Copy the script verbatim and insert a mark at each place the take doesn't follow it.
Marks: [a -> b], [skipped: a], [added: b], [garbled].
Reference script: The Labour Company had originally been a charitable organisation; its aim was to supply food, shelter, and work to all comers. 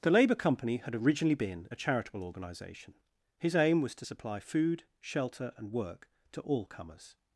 The Labour Company had originally been a charitable organisation; [its -> his] aim was to supply food, shelter, and work to all comers.